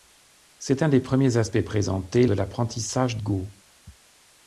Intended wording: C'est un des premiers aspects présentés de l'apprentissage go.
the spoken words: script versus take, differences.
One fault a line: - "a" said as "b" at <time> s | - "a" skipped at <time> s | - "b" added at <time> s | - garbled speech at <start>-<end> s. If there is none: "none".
none